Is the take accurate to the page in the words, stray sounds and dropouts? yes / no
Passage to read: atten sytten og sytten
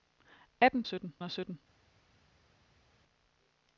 yes